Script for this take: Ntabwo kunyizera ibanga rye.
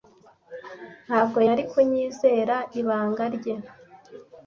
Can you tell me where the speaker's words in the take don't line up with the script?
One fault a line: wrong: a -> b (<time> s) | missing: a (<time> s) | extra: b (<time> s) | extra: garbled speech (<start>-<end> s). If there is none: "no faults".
extra: yari (1.5 s)